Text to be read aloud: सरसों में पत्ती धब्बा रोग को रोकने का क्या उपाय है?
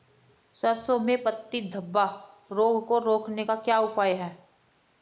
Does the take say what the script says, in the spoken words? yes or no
yes